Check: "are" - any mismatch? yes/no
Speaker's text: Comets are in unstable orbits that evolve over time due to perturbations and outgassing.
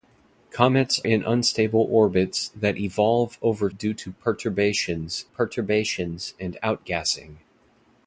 yes